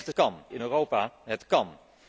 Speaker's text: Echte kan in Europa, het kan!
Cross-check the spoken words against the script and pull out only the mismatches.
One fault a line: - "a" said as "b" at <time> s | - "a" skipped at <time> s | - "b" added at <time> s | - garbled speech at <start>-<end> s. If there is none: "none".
none